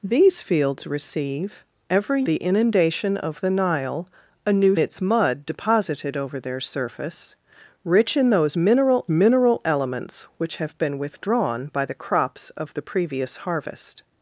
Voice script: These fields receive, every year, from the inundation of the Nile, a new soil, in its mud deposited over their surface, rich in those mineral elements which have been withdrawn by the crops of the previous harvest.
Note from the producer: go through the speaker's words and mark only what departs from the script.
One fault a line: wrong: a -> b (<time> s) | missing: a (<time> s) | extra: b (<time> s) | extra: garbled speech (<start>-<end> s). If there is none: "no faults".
missing: year from (2.2 s)
missing: soil in (4.8 s)
extra: mineral (9.1 s)